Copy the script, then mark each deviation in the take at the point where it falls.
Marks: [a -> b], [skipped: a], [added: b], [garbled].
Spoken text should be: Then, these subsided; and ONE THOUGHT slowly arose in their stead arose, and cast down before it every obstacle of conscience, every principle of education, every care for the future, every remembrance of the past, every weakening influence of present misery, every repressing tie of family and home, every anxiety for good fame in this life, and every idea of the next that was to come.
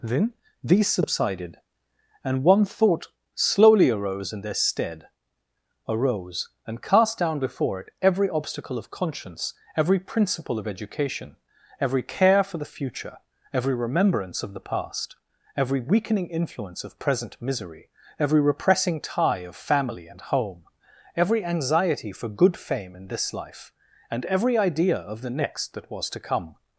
Then, these subsided; and ONE THOUGHT slowly arose in their stead arose, and cast down before it every obstacle of conscience, every principle of education, every care for the future, every remembrance of the past, every weakening influence of present misery, every repressing tie of family and home, every anxiety for good fame in this life, and every idea of the next that was to come.